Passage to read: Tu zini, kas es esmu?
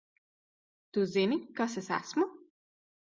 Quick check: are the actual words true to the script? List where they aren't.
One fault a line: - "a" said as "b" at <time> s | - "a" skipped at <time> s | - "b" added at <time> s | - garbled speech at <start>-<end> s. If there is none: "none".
none